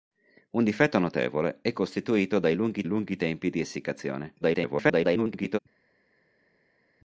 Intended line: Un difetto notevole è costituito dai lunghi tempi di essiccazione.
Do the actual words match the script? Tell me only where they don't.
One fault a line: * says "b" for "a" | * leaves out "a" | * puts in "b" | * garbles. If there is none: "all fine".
* puts in "lunghi"
* garbles